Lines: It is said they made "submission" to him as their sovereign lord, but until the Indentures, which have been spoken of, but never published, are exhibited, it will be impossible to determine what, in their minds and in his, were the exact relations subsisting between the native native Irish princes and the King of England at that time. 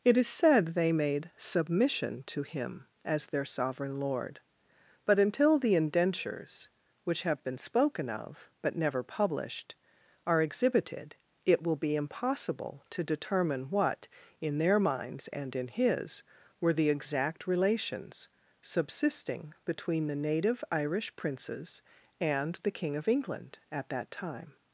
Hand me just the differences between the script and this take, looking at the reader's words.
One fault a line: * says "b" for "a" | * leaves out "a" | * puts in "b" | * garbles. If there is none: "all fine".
* leaves out "native"